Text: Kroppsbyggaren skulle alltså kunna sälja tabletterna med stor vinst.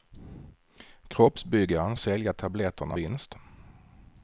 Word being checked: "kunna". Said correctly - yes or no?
no